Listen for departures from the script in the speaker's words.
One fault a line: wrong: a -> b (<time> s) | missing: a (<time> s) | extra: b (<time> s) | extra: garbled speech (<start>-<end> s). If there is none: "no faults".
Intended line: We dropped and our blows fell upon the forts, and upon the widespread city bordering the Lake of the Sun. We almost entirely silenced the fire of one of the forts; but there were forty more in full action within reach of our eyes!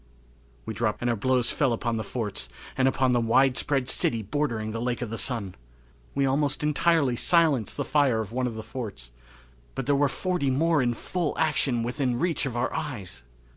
no faults